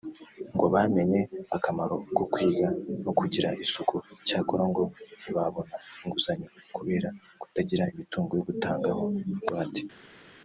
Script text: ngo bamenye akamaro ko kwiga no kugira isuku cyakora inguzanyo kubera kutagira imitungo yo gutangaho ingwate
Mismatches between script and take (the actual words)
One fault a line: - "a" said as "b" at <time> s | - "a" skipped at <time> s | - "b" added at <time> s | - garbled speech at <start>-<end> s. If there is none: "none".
- "ngo ntibabona" added at 4.7 s